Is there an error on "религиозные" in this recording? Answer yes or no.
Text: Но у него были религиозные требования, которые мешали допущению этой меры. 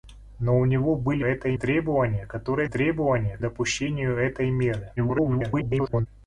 yes